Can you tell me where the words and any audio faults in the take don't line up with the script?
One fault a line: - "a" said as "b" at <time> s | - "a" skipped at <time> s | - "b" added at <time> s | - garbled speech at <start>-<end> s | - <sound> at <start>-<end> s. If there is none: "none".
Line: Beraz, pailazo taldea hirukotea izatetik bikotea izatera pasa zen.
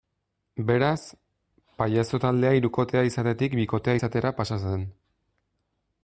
none